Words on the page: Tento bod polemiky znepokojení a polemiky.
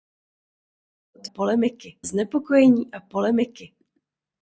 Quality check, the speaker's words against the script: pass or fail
pass